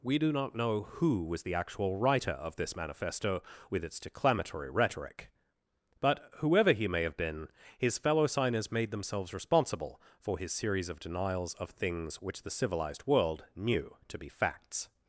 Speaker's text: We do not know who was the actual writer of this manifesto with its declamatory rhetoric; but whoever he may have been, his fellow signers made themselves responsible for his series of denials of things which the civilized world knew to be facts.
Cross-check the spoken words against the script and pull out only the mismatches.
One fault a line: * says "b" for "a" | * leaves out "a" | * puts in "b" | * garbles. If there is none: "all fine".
all fine